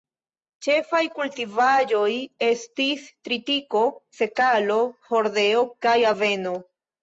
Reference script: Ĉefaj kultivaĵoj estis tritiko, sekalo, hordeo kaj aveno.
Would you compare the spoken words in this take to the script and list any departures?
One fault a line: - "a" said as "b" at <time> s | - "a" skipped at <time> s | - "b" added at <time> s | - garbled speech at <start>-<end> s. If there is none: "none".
none